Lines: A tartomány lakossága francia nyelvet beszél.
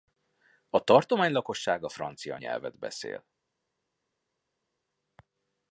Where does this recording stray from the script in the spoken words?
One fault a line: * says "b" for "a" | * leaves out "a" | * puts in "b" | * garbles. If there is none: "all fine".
all fine